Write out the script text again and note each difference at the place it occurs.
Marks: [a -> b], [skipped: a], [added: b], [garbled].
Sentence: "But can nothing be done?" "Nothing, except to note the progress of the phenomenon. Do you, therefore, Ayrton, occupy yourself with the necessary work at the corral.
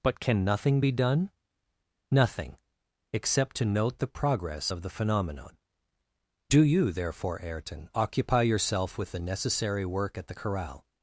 "But can nothing be done?" "Nothing, except to note the progress of the phenomenon. Do you, therefore, Ayrton, occupy yourself with the necessary work at the corral.